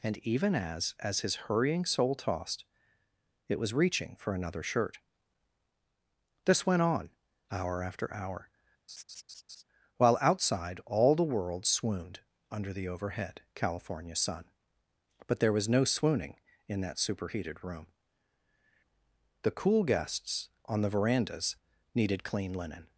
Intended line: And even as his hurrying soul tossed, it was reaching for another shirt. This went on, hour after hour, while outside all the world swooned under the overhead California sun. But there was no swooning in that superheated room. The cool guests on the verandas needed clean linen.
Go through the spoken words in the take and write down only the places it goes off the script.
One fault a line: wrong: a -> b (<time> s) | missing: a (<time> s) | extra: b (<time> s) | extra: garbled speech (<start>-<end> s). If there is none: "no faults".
extra: as (1.0 s)